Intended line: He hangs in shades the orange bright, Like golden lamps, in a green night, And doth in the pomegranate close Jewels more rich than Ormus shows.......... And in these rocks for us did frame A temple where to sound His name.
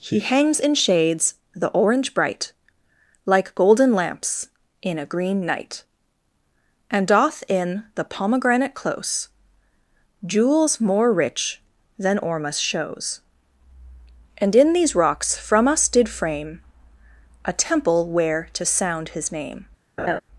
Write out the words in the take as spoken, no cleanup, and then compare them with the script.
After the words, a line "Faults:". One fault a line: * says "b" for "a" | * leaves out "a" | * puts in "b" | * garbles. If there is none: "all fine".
He hangs in shades the orange bright, Like golden lamps, in a green night, And doth in the pomegranate close Jewels more rich than Ormus shows.......... And in these rocks from us did frame A temple where to sound His name.
Faults:
* says "from" for "for"